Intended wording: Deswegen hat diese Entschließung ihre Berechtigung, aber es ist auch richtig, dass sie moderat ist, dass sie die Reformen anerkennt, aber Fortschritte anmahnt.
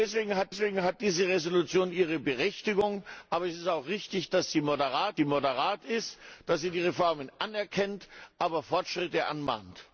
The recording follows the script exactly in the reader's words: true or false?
false